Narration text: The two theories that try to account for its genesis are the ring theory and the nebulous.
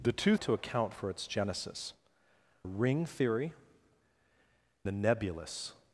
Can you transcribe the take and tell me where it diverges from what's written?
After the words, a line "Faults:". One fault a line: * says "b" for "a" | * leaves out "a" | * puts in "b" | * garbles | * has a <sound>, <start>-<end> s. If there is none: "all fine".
The two to account for its genesis ring theory the nebulous.
Faults:
* leaves out "theories that try"
* leaves out "are the"
* leaves out "and"